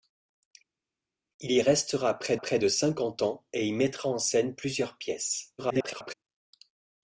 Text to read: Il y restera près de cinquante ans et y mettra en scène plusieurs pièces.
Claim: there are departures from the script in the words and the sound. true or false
true